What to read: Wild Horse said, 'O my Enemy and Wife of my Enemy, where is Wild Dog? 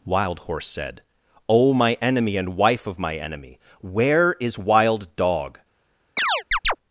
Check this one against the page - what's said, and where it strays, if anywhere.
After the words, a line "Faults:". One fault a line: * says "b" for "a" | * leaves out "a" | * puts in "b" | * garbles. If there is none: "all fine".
Wild Horse said, 'O my Enemy and Wife of my Enemy, where is Wild Dog?
Faults:
all fine